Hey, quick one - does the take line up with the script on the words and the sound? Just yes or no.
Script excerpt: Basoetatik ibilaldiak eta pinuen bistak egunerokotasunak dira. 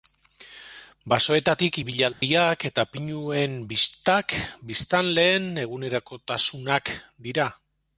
no